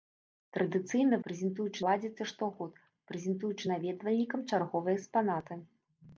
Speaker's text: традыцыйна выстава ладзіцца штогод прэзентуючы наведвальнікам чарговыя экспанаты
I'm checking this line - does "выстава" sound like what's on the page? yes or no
no